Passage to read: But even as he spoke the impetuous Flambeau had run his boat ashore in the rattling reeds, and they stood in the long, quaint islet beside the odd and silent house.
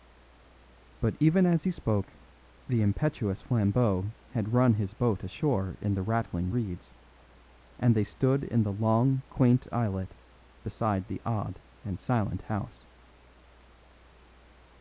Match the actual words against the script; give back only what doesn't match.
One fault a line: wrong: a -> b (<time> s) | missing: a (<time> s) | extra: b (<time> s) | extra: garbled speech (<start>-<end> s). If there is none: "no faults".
no faults